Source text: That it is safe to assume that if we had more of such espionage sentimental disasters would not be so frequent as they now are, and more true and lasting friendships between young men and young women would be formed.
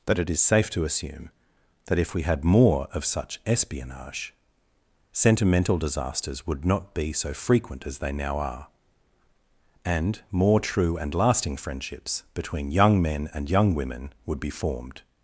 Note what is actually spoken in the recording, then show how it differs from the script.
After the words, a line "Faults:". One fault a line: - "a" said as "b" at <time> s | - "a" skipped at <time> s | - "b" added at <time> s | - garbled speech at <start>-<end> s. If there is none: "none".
That it is safe to assume that if we had more of such espionage sentimental disasters would not be so frequent as they now are, and more true and lasting friendships between young men and young women would be formed.
Faults:
none